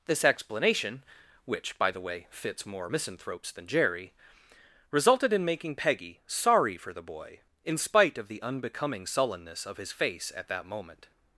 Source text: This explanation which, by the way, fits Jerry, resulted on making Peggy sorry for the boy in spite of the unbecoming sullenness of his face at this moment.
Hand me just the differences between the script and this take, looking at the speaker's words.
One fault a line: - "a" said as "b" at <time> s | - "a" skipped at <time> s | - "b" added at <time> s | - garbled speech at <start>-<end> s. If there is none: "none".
- "more misanthropes than" added at 2.6 s
- "on" said as "in" at 5.3 s
- "this" said as "that" at 10.5 s